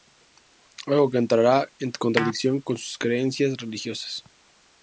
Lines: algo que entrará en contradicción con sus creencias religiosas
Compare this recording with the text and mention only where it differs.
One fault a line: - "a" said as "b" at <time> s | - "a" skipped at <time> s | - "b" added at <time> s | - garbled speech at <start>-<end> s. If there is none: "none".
none